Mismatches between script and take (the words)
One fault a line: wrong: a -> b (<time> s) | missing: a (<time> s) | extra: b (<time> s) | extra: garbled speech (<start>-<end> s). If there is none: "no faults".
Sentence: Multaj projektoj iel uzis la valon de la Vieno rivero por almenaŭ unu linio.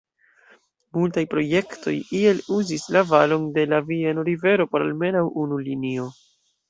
no faults